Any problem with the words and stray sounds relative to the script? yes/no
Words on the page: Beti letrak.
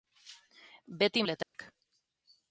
yes